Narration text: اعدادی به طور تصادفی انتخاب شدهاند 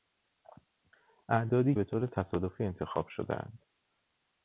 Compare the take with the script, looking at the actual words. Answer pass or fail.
pass